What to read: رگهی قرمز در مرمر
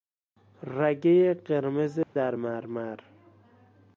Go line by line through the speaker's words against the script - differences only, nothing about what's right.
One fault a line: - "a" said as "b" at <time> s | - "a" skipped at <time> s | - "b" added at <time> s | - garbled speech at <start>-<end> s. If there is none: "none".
none